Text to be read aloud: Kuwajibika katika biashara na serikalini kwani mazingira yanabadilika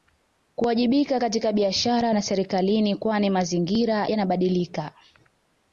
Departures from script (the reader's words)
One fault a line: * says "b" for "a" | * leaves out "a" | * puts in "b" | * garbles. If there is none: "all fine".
all fine